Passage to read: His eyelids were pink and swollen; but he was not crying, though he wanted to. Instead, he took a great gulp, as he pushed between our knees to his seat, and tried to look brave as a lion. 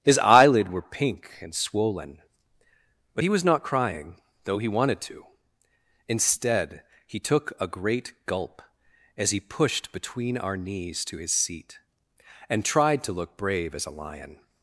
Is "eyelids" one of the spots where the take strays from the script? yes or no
yes